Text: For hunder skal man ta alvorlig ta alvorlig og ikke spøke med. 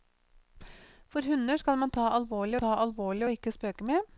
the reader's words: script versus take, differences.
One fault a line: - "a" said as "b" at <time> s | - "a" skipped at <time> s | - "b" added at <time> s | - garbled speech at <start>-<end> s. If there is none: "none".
none